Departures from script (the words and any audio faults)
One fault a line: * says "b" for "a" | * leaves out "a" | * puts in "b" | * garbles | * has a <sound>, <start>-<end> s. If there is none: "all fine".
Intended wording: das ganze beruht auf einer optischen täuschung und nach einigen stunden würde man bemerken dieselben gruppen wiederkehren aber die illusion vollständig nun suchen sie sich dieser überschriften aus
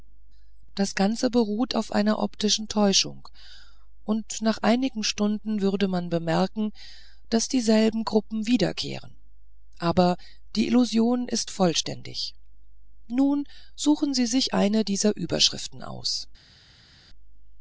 * puts in "daß"
* puts in "ist"
* puts in "eine"